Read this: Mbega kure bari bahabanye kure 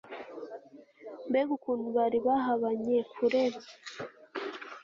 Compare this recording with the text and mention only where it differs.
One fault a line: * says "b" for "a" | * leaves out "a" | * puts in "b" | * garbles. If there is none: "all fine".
* says "ukuntu" for "kure"